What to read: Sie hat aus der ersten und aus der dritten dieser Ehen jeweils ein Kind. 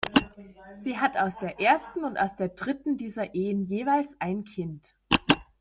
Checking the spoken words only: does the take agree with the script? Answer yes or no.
yes